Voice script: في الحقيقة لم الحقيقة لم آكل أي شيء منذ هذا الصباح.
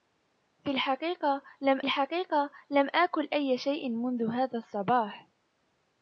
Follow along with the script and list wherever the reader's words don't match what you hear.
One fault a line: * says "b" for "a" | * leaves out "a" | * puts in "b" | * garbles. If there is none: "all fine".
all fine